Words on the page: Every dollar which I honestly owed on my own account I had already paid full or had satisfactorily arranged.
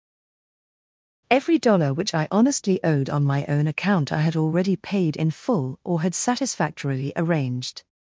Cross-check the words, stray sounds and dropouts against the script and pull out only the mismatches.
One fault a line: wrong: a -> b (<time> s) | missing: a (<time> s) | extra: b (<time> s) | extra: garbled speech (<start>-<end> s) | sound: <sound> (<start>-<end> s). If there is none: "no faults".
extra: in (5.1 s)